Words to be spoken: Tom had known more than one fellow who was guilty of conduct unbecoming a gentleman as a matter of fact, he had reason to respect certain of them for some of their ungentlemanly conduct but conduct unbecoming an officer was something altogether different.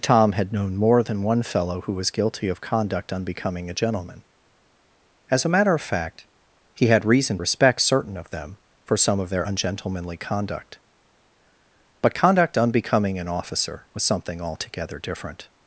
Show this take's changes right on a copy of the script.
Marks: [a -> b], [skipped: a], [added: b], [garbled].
Tom had known more than one fellow who was guilty of conduct unbecoming a gentleman as a matter of fact, he had reason [skipped: to] respect certain of them for some of their ungentlemanly conduct but conduct unbecoming an officer was something altogether different.